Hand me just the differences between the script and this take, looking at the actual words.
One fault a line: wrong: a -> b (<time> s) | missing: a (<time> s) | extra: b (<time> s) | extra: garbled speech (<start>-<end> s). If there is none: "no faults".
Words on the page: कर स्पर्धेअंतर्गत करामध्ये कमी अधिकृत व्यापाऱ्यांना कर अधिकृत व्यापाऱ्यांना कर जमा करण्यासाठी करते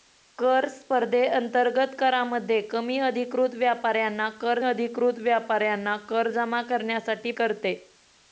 no faults